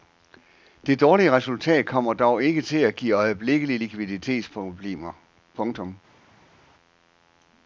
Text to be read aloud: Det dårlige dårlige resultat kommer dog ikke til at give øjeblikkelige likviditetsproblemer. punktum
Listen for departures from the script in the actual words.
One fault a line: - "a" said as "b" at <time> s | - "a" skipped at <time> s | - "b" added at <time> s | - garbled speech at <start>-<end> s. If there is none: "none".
- "dårlige" skipped at 1.3 s